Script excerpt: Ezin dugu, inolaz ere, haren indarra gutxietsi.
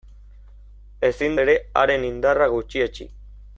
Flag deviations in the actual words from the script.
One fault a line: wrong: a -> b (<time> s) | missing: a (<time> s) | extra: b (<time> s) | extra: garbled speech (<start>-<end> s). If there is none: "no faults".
missing: dugu inolaz (1.4 s)